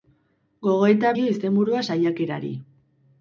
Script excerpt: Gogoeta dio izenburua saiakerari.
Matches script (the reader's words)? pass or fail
pass